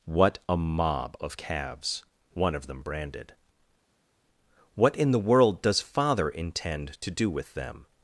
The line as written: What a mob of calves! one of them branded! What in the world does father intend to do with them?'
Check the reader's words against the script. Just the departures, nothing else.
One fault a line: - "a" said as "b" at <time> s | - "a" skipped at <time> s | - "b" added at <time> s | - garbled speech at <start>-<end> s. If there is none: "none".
none